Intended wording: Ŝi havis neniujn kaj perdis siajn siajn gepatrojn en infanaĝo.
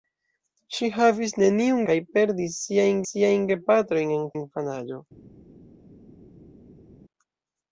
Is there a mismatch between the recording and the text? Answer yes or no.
no